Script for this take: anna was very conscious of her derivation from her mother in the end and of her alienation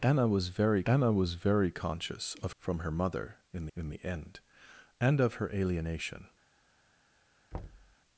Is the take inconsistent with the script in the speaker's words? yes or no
yes